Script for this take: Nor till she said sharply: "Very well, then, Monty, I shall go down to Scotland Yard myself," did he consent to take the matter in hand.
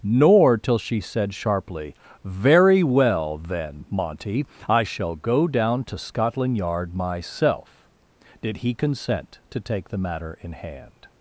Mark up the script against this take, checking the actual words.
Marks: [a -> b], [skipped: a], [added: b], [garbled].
Nor till she said sharply: "Very well, then, Monty, I shall go down to Scotland Yard myself," did he consent to take the matter in hand.